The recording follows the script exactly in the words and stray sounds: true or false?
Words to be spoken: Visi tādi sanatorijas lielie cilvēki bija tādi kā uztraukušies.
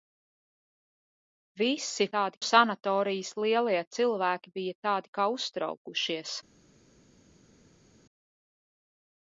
true